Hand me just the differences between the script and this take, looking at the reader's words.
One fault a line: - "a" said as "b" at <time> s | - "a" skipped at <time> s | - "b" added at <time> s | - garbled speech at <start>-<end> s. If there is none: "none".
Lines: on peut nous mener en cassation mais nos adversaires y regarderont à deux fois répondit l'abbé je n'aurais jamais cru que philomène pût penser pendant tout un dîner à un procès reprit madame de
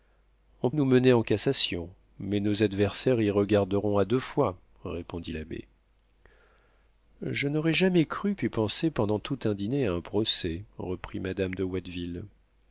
- "peut" skipped at 0.7 s
- "que philomène" skipped at 8.3 s